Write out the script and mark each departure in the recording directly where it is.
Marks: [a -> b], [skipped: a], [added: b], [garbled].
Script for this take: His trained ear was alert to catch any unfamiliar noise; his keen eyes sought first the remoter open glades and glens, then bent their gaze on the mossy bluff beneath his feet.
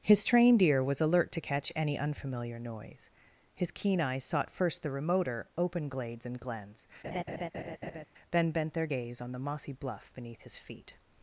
His trained ear was alert to catch any unfamiliar noise; his keen eyes sought first the remoter open glades and glens, then bent their gaze on the mossy bluff beneath his feet.